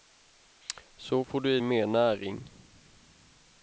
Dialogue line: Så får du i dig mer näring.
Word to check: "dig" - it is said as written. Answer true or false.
false